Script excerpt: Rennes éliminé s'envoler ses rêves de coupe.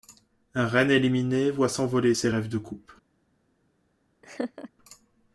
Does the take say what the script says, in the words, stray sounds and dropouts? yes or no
no